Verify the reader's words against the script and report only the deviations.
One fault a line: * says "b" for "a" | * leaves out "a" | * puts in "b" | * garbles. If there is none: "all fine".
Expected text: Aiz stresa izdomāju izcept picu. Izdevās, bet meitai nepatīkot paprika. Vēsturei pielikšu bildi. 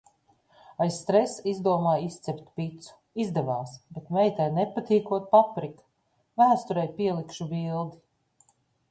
all fine